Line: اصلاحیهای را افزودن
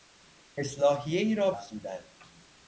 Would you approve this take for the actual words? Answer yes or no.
yes